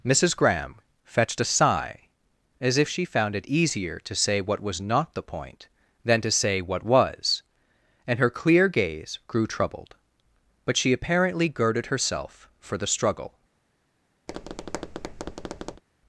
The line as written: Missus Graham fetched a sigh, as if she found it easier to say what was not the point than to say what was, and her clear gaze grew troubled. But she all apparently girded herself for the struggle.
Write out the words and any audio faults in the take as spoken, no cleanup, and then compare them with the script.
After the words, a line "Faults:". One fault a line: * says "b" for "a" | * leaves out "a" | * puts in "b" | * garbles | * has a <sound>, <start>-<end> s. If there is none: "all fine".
Missus Graham fetched a sigh, as if she found it easier to say what was not the point than to say what was, and her clear gaze grew troubled. But she apparently girded herself for the struggle.
Faults:
* leaves out "all"
* has a tap, 14.3-15.8 s